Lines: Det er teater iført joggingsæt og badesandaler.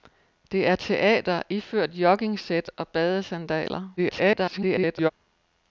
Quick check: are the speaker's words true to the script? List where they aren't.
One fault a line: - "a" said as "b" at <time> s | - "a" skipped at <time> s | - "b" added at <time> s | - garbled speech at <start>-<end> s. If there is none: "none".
- garbled speech at 4.0-5.1 s